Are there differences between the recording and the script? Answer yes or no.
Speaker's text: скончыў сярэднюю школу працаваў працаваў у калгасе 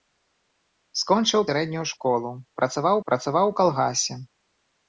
no